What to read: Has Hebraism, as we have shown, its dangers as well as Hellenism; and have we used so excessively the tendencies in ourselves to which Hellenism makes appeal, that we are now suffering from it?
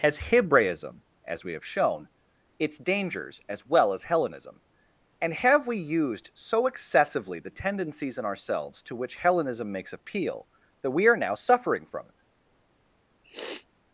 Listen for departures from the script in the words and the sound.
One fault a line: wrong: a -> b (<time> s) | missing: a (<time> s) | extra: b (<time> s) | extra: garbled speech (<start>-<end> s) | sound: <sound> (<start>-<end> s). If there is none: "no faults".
sound: sniff (13.2-13.7 s)